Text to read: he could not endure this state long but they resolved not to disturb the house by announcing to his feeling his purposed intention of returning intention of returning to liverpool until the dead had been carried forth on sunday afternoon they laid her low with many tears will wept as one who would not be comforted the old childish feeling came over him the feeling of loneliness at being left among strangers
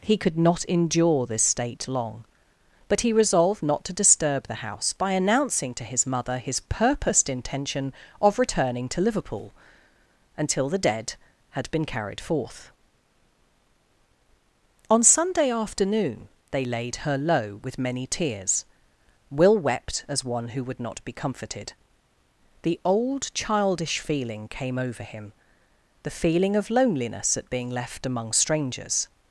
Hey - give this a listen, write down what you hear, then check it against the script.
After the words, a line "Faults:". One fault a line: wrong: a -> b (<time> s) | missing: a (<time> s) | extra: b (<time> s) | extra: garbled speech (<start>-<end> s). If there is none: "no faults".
he could not endure this state long but he resolved not to disturb the house by announcing to his mother his purposed intention of returning to liverpool until the dead had been carried forth on sunday afternoon they laid her low with many tears will wept as one who would not be comforted the old childish feeling came over him the feeling of loneliness at being left among strangers
Faults:
wrong: they -> he (3.0 s)
wrong: feeling -> mother (6.1 s)
missing: intention of returning (8.9 s)